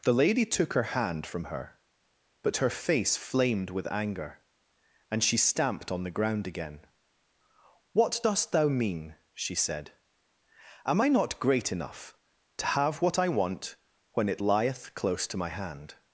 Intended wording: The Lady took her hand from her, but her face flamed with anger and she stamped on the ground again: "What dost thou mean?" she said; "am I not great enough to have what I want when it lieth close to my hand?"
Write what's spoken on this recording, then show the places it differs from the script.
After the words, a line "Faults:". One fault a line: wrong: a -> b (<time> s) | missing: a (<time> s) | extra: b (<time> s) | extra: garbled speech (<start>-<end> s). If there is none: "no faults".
The Lady took her hand from her, but her face flamed with anger and she stamped on the ground again: "What dost thou mean?" she said; "am I not great enough to have what I want when it lieth close to my hand?"
Faults:
no faults